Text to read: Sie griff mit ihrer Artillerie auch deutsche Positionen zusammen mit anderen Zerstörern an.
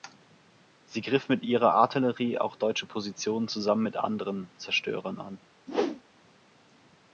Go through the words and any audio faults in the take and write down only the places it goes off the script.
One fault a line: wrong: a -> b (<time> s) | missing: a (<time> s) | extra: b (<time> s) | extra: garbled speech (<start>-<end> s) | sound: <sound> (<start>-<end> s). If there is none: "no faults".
sound: whoosh (5.7-6.0 s)